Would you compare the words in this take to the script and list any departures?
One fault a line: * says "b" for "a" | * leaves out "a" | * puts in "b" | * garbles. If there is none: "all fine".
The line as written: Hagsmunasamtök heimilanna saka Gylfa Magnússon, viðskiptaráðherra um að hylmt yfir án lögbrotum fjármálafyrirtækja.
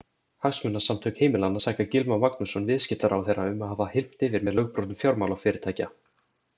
* puts in "hafa"
* says "með" for "án"